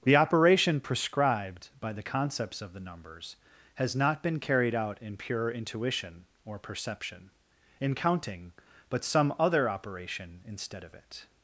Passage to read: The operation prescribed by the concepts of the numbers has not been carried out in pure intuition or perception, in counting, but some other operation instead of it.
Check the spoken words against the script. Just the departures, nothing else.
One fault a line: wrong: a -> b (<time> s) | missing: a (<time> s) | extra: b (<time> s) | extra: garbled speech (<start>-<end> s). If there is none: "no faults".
no faults